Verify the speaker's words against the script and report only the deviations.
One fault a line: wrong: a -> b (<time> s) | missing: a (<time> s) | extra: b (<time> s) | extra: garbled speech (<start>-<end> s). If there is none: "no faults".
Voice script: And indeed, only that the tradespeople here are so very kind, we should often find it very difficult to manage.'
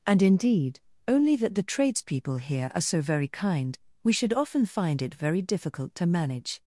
no faults